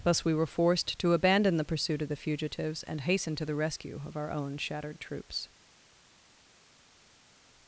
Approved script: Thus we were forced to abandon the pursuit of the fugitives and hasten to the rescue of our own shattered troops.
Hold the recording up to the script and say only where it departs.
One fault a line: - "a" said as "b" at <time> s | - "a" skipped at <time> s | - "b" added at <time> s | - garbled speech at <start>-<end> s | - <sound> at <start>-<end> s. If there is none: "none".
none